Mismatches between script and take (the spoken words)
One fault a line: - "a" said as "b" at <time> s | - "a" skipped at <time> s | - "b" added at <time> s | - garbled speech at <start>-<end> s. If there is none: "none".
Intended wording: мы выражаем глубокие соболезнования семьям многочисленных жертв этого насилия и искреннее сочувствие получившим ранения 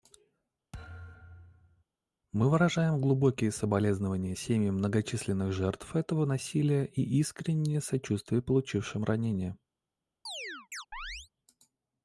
none